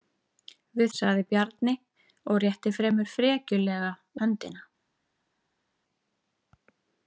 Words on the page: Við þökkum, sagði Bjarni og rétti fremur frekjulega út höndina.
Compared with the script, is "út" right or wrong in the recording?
wrong